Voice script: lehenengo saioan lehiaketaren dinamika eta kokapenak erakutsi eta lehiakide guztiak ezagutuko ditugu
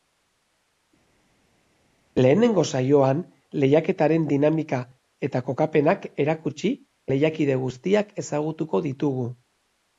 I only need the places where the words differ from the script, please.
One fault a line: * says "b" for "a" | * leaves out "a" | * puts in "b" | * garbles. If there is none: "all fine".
* leaves out "eta"